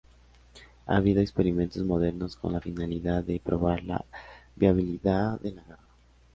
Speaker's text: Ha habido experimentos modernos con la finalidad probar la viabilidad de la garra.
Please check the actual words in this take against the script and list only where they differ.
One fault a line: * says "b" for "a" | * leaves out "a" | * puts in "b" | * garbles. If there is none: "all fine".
* puts in "de"